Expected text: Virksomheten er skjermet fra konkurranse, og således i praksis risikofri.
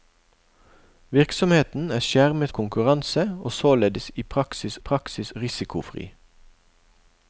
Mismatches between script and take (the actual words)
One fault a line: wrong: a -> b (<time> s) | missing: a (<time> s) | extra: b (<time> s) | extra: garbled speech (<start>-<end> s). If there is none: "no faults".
missing: fra (2.5 s)
extra: praksis (4.8 s)